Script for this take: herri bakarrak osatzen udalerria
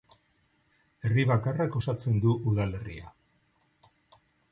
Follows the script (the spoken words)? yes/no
no